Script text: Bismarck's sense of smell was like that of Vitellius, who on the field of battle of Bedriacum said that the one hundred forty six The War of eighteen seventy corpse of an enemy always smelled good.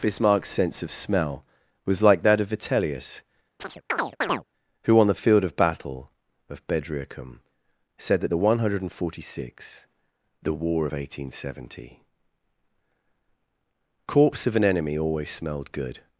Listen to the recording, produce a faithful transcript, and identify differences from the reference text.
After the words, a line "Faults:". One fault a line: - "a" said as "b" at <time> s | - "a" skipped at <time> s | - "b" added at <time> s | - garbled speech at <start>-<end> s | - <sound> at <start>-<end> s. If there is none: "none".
Bismarck's sense of smell was like that of Vitellius, who on the field of battle of Bedriacum said that the one hundred forty six The War of eighteen seventy corpse of an enemy always smelled good.
Faults:
- chirp at 3.6-4.4 s